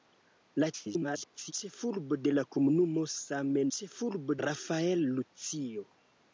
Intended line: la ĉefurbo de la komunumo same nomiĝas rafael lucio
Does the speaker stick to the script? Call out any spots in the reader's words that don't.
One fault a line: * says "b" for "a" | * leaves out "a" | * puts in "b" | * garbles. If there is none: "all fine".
* garbles
* says "ĉefurbo" for "nomiĝas"